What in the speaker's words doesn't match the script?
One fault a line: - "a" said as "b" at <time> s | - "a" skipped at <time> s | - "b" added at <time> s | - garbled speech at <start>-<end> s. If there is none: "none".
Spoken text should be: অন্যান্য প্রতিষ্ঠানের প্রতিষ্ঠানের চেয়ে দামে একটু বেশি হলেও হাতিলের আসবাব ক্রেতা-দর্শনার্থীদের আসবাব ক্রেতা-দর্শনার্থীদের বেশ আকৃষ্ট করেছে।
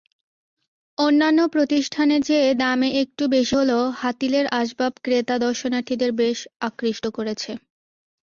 - "প্রতিষ্ঠানের" skipped at 2.2 s
- "আসবাব ক্রেতা-দর্শনার্থীদের" skipped at 6.1 s